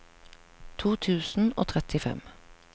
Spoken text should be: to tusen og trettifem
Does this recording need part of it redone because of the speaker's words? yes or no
no